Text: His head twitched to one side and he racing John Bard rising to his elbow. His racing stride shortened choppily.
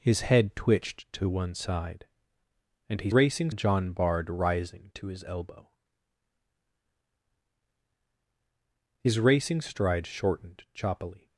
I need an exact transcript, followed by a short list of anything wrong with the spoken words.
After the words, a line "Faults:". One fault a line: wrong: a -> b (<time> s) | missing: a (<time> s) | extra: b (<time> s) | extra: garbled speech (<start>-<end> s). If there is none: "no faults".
His head twitched to one side and he racing John Bard rising to his elbow. His racing stride shortened choppily.
Faults:
no faults